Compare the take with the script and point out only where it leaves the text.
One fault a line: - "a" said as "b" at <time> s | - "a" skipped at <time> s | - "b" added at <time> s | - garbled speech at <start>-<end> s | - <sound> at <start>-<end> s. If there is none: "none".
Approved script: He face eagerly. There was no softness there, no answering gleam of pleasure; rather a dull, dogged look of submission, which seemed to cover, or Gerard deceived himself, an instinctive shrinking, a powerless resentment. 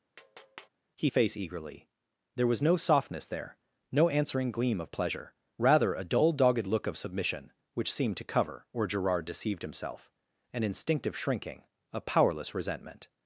- tap at 0.2-0.7 s